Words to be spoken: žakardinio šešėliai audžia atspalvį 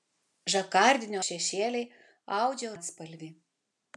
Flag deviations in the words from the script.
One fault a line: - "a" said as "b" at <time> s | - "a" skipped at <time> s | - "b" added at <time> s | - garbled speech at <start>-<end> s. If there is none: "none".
none